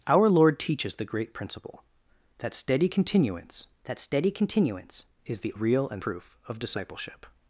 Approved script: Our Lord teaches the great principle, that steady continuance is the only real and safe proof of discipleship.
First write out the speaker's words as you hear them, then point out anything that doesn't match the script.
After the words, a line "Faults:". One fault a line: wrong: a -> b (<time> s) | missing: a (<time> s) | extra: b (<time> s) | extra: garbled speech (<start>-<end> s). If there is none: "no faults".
Our Lord teaches the great principle, that steady continuance that steady continuance is the real and proof of discipleship.
Faults:
extra: that steady continuance (3.8 s)
missing: only (5.5 s)
missing: safe (6.0 s)